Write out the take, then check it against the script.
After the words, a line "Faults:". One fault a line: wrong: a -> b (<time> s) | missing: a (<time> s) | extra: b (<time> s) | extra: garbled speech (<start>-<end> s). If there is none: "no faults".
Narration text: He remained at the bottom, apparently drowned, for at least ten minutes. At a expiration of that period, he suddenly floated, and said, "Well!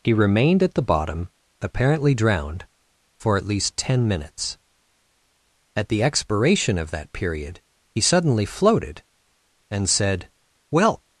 He remained at the bottom, apparently drowned, for at least ten minutes. At the expiration of that period, he suddenly floated, and said, "Well!
Faults:
wrong: a -> the (5.9 s)